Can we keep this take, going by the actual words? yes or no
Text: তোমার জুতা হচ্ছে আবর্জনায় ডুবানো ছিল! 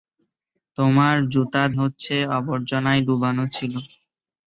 yes